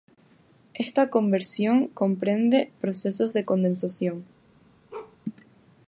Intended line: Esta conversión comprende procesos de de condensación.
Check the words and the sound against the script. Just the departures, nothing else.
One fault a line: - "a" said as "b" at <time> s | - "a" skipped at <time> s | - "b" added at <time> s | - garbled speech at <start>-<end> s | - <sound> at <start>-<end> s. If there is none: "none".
- "de" skipped at 3.5 s
- bark at 4.9-5.2 s